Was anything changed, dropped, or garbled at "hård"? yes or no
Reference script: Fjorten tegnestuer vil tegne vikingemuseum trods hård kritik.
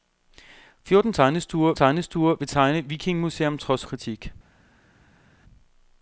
yes